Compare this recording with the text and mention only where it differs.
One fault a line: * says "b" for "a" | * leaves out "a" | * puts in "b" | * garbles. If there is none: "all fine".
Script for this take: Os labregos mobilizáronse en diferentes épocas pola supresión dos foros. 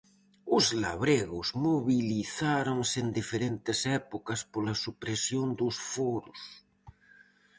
all fine